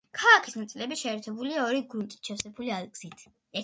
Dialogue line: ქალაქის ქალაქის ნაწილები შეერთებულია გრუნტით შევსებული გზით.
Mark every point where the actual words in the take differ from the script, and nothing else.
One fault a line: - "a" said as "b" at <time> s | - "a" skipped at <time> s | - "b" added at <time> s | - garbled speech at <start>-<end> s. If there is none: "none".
- "ქალაქის" skipped at 0.6 s
- "ორი" added at 1.7 s